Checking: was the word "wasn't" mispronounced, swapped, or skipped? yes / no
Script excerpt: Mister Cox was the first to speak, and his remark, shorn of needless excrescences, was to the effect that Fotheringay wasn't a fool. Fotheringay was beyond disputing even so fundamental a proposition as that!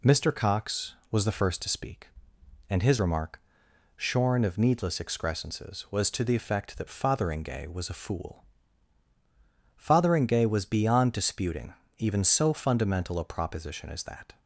yes